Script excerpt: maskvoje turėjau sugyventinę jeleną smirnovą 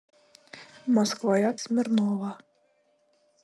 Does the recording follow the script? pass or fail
fail